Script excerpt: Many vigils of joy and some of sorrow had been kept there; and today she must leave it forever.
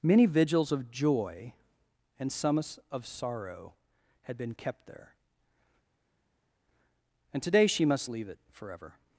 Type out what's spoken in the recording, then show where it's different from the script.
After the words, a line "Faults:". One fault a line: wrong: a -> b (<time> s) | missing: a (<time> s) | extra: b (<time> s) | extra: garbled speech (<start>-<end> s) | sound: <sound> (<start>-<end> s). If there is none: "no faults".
Many vigils of joy and some of sorrow had been kept there; and today she must leave it forever.
Faults:
no faults